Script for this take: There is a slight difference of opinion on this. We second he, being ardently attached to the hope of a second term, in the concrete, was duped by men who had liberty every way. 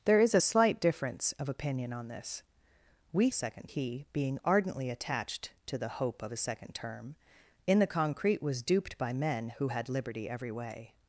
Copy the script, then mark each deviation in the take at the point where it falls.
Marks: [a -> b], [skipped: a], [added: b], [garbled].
There is a slight difference of opinion on this. We second he, being ardently attached to the hope of a second term, in the concrete, was duped by men who had liberty every way.